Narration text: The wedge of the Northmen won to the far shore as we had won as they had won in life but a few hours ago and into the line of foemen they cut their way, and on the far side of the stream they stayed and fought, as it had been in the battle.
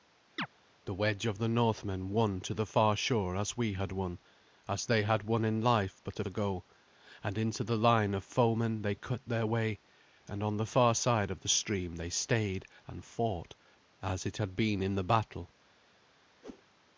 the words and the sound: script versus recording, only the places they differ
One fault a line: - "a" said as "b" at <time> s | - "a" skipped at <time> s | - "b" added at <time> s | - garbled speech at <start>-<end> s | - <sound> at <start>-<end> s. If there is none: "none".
- chirp at 0.4-0.5 s
- "few hours" skipped at 6.2 s
- whoosh at 16.4-16.6 s